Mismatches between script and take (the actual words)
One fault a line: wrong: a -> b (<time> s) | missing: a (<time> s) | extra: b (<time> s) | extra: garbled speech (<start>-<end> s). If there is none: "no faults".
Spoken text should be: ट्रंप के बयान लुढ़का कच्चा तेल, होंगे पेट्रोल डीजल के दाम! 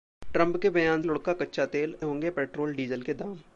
no faults